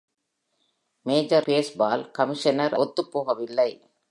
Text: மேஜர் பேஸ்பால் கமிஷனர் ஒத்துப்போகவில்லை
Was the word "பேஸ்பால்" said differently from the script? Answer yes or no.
no